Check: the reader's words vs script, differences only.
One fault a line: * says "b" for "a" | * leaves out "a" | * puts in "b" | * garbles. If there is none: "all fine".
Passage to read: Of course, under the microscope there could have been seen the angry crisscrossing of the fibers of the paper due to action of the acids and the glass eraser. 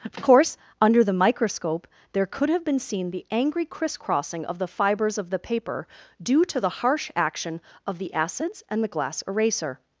* puts in "the harsh"